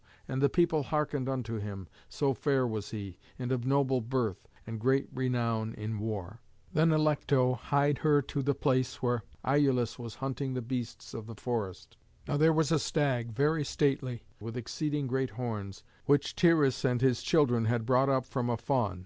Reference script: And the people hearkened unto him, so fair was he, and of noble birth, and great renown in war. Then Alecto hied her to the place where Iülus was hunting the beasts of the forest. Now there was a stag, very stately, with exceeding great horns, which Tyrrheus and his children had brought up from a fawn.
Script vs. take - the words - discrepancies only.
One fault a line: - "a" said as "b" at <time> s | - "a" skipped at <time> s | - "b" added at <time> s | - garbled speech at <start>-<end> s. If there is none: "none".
none